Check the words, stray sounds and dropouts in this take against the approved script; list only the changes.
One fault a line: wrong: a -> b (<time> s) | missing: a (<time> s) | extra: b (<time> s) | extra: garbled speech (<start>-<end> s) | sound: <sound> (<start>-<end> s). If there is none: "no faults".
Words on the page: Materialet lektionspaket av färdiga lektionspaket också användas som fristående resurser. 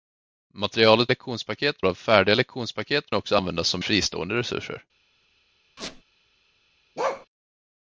sound: squeak (5.8-6.0 s)
sound: bark (7.0-7.3 s)